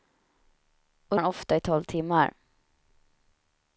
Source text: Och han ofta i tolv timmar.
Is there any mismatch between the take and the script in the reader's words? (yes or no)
no